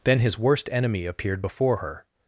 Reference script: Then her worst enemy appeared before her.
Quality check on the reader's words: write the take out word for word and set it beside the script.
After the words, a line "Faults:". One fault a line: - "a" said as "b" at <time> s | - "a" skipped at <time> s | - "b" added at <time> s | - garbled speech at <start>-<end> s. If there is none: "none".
Then his worst enemy appeared before her.
Faults:
- "her" said as "his" at 0.2 s